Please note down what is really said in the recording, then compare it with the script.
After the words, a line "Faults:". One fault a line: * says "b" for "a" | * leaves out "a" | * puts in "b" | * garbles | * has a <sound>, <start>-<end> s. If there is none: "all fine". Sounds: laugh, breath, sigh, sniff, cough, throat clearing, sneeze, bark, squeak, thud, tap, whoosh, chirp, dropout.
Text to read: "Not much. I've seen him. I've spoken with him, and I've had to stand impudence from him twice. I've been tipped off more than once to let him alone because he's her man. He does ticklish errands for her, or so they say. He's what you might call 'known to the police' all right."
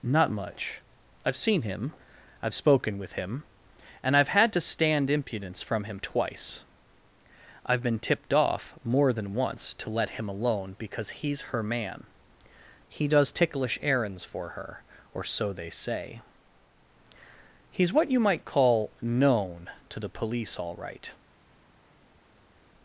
"Not much. I've seen him. I've spoken with him, and I've had to stand impudence from him twice. I've been tipped off more than once to let him alone because he's her man. He does ticklish errands for her, or so they say. He's what you might call 'known to the police' all right."
Faults:
all fine